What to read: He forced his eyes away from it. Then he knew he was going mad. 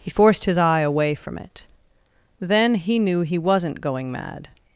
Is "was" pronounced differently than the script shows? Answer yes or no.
yes